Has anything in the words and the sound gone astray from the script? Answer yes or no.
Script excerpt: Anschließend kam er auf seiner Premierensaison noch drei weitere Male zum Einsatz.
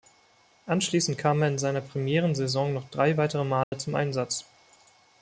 yes